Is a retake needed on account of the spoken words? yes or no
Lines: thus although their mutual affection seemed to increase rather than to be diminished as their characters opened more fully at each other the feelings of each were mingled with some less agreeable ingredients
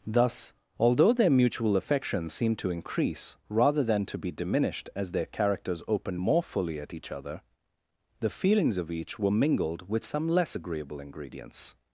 no